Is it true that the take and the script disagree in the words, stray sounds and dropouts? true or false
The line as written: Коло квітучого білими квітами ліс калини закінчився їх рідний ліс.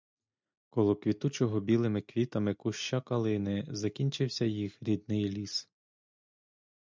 true